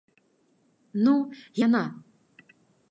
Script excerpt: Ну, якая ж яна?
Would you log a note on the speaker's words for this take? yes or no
yes